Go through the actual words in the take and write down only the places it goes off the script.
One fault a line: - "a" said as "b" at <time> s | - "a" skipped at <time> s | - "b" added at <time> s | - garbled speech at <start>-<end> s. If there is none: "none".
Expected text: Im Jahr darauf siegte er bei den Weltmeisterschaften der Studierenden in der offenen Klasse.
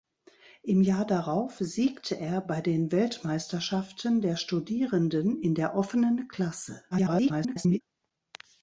- garbled speech at 6.9-7.8 s